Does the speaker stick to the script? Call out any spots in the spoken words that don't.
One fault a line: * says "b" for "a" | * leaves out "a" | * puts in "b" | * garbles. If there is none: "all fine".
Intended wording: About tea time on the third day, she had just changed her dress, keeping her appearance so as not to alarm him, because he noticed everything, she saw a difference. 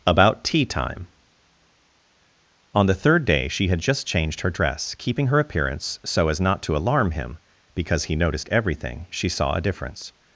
all fine